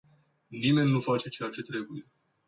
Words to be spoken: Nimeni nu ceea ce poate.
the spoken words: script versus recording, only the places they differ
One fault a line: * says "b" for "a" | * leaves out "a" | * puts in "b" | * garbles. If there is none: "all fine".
* puts in "face"
* says "trebuie" for "poate"